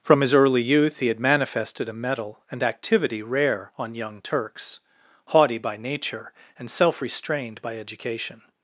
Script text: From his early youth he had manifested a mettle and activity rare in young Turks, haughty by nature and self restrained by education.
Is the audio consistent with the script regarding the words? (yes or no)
no